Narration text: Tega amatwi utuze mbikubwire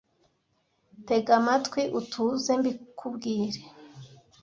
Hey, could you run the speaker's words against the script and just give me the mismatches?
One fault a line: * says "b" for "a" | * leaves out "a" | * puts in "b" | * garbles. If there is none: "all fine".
all fine